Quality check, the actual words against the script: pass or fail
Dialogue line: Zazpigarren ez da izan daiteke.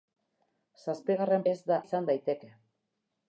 pass